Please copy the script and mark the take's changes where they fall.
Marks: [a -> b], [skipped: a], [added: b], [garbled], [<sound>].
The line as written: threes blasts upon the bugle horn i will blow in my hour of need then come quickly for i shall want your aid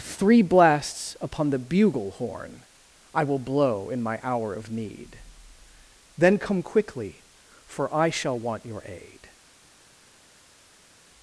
[threes -> three] blasts upon the bugle horn i will blow in my hour of need then come quickly for i shall want your aid